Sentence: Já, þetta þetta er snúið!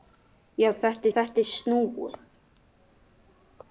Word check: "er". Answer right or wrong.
right